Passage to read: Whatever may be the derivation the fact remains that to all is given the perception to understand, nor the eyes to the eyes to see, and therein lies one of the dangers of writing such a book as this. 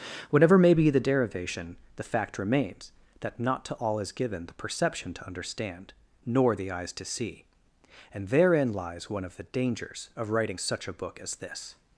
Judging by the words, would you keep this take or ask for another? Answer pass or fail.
fail